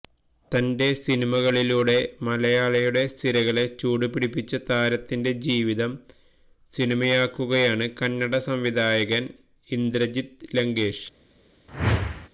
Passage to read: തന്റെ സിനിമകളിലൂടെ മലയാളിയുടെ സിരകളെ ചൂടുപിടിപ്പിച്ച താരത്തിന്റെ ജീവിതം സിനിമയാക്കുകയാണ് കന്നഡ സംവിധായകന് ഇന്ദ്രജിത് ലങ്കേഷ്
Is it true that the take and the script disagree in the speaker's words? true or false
false